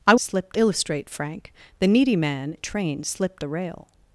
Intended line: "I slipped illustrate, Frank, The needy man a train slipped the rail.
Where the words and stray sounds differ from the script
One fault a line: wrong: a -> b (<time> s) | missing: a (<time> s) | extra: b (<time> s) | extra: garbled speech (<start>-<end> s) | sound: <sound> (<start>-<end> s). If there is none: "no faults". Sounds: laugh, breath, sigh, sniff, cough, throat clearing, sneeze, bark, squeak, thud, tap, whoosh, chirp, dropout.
no faults